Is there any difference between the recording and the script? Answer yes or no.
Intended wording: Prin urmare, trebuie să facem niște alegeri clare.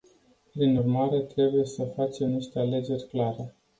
no